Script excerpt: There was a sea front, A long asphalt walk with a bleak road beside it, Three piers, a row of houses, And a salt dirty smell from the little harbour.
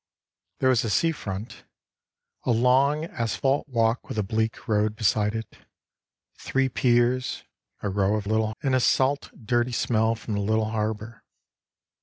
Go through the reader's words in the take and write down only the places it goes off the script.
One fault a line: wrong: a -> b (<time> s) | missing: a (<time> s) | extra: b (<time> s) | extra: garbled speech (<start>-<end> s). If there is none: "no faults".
wrong: houses -> little (8.2 s)